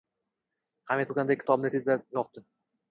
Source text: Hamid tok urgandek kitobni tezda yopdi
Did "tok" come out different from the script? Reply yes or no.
yes